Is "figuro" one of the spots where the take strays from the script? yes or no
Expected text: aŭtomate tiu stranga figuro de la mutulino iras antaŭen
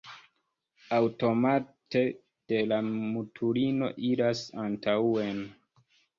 yes